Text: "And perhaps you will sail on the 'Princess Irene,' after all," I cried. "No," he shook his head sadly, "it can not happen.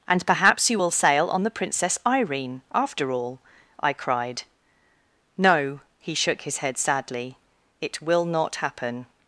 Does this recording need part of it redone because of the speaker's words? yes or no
yes